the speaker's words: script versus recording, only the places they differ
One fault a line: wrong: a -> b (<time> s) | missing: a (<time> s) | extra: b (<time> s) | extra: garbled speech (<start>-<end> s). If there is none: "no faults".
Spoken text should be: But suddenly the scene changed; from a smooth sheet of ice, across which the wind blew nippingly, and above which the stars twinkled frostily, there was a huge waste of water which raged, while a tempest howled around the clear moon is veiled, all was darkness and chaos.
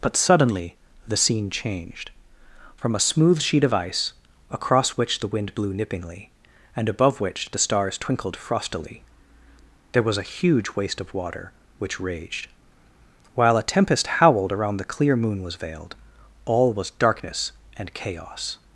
wrong: is -> was (15.4 s)